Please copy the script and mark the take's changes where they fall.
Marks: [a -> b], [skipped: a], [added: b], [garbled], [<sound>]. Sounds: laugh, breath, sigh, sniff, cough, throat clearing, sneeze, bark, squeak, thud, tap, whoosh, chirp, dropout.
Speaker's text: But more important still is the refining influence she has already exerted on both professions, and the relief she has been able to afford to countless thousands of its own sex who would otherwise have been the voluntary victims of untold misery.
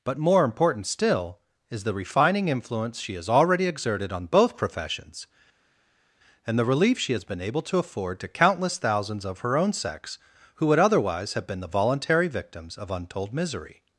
But more important still is the refining influence she has already exerted on both professions, and the relief she has been able to afford to countless thousands of [its -> her] own sex who would otherwise have been the voluntary victims of untold misery.